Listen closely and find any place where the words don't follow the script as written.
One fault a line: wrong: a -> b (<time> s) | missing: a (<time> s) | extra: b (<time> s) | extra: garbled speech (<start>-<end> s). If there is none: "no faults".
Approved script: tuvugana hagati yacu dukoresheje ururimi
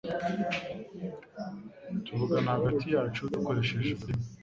no faults